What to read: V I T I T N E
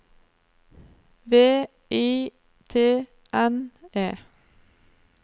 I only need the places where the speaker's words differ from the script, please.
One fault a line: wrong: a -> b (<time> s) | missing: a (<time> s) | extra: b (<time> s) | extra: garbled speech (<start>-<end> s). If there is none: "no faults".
missing: I T (3.1 s)